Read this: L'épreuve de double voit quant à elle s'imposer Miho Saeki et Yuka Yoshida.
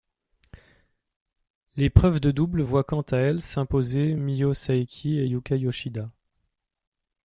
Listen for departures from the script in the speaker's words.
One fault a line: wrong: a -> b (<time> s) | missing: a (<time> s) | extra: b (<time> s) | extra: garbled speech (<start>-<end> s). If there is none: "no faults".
no faults